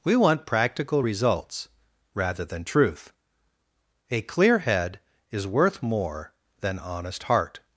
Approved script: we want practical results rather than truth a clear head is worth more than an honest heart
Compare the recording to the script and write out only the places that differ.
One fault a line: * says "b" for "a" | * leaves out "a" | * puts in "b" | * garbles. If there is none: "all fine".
* leaves out "an"